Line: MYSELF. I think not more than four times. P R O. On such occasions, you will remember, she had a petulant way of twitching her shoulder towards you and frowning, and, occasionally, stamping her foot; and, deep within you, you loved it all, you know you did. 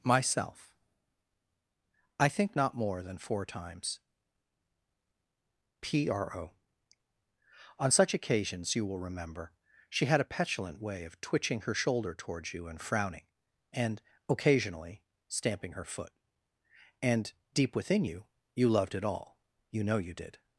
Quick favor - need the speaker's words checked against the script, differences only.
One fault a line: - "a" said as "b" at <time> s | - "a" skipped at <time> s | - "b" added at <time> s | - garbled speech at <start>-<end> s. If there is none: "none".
none